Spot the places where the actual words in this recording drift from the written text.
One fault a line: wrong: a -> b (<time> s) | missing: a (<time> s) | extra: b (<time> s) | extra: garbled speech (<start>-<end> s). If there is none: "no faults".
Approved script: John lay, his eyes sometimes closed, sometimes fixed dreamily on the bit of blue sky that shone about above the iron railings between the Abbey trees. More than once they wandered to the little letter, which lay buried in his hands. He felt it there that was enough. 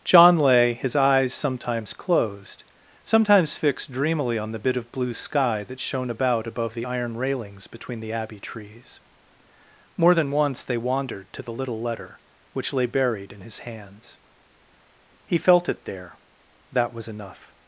no faults